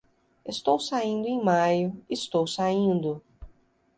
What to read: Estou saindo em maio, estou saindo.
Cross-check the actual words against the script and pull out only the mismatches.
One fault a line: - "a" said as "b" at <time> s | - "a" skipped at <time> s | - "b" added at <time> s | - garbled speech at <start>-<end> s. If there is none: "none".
none